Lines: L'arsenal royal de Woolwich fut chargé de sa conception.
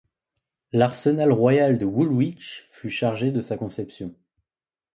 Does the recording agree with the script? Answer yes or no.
yes